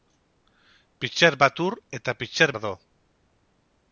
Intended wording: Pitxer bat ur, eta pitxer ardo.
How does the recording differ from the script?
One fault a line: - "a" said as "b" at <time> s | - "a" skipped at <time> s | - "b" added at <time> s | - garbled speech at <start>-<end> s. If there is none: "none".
none